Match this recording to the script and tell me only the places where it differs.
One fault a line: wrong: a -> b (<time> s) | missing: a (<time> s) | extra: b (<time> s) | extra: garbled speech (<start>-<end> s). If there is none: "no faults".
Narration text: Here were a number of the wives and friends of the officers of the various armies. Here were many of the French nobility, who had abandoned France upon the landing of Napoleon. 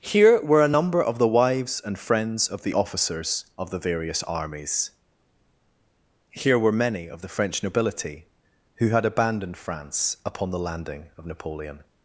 no faults